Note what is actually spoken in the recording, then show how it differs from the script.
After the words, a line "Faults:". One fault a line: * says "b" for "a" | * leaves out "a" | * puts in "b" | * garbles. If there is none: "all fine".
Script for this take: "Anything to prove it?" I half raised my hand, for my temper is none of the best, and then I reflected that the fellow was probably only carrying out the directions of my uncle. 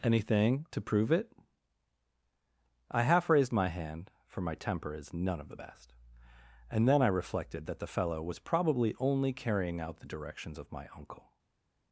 "Anything to prove it?" I half raised my hand, for my temper is none of the best, and then I reflected that the fellow was probably only carrying out the directions of my uncle.
Faults:
all fine